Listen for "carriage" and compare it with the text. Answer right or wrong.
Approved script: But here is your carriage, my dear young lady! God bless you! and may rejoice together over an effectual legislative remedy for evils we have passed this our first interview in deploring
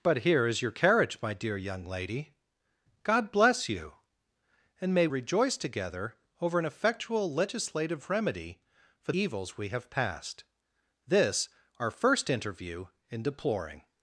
right